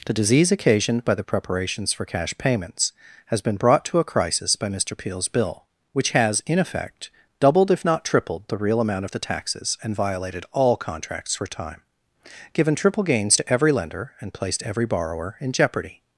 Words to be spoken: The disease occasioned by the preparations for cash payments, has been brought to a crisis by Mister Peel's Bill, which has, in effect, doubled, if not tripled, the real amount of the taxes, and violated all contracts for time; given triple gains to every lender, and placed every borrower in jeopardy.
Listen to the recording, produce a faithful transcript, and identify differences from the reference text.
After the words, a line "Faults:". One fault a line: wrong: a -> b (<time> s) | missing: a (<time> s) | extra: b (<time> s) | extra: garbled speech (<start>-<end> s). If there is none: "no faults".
The disease occasioned by the preparations for cash payments, has been brought to a crisis by Mister Peel's Bill, which has, in effect, doubled, if not tripled, the real amount of the taxes, and violated all contracts for time; given triple gains to every lender, and placed every borrower in jeopardy.
Faults:
no faults